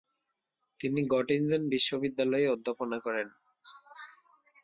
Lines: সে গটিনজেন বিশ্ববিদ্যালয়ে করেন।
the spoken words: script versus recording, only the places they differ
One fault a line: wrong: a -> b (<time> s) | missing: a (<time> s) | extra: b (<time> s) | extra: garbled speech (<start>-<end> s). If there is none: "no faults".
wrong: সে -> তিনি (0.8 s)
extra: অধ্যাপনা (2.5 s)